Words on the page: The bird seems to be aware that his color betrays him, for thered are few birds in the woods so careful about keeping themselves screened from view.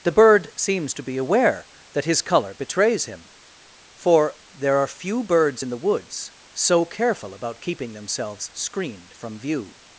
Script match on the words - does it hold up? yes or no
no